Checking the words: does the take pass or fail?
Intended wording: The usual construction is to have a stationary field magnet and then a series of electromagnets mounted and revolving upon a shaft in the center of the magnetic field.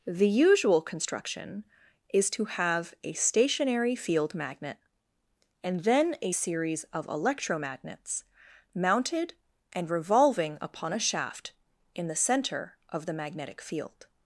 pass